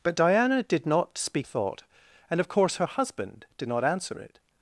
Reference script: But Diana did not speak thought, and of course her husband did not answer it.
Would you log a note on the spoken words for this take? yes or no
no